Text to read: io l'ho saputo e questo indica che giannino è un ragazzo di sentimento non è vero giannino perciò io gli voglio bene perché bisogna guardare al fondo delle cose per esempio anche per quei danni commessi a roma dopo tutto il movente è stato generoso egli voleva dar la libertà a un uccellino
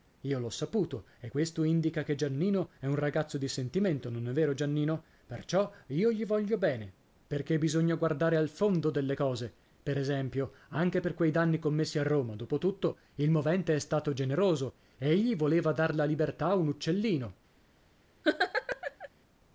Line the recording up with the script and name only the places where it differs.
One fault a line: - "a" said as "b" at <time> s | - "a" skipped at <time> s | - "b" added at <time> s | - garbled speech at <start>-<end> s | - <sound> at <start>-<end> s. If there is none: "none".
- laugh at 18.2-19.1 s